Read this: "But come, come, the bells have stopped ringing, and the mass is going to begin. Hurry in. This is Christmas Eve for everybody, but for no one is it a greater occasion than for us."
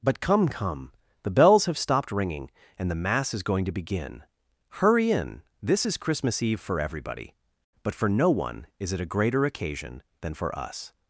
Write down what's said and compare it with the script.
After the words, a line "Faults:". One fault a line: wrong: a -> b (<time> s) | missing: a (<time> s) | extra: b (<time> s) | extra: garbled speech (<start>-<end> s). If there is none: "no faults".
"But come, come, the bells have stopped ringing, and the mass is going to begin. Hurry in. This is Christmas Eve for everybody, but for no one is it a greater occasion than for us."
Faults:
no faults